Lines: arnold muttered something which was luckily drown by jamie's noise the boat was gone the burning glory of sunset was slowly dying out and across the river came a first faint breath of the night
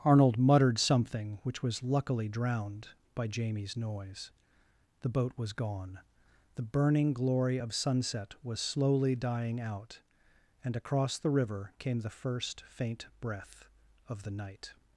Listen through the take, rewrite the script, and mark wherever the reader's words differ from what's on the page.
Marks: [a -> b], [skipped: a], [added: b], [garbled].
arnold muttered something which was luckily [drown -> drowned] by jamie's noise the boat was gone the burning glory of sunset was slowly dying out and across the river came [a -> the] first faint breath of the night